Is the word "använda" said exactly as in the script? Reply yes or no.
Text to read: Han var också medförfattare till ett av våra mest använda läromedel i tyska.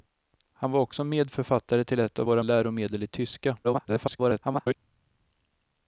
no